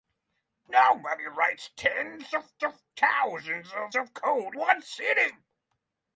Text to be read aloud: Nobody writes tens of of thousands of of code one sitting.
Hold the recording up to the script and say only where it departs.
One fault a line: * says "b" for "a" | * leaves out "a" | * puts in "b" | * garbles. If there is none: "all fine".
all fine